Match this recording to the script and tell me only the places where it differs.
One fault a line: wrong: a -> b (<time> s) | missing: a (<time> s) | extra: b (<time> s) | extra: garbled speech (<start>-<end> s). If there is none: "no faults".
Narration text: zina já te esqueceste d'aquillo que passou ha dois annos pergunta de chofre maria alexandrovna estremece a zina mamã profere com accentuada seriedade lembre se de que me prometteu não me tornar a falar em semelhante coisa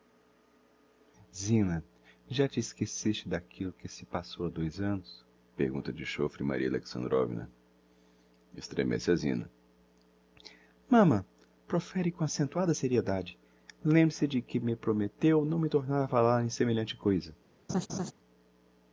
extra: se (3.9 s)